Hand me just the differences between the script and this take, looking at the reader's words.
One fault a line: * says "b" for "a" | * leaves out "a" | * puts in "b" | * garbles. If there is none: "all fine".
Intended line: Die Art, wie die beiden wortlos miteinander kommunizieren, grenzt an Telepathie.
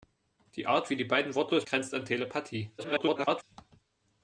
* leaves out "miteinander kommunizieren"
* garbles